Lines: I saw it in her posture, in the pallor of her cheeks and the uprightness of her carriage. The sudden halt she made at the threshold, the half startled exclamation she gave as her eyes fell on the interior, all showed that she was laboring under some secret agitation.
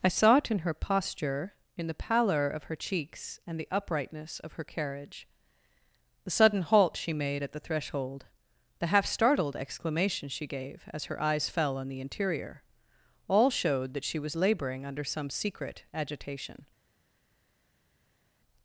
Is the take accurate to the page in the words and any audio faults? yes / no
yes